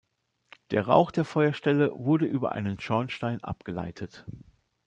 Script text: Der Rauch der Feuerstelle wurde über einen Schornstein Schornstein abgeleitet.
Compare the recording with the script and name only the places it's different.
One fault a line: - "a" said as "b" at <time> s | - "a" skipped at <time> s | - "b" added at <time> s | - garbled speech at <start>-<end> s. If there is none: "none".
- "Schornstein" skipped at 3.4 s